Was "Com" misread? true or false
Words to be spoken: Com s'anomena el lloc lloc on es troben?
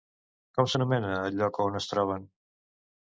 false